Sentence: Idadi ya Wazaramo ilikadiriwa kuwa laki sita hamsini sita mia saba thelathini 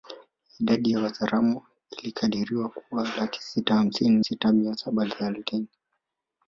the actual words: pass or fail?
pass